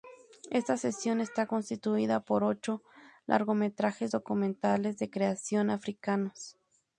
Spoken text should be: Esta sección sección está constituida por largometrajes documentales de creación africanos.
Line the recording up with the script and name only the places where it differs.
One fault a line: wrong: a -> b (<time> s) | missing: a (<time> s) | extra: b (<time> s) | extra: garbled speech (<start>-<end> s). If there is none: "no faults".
missing: sección (1.2 s)
extra: ocho (2.4 s)